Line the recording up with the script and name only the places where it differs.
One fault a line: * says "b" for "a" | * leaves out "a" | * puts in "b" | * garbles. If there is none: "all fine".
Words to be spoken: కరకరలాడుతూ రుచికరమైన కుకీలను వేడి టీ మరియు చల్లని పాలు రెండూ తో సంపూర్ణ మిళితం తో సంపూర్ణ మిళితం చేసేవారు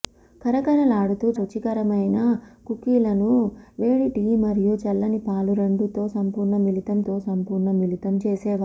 all fine